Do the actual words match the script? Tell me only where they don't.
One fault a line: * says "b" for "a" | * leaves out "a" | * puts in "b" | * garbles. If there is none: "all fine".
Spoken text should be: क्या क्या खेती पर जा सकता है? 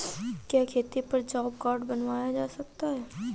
* leaves out "क्या"
* puts in "जॉब कार्ड बनवाया"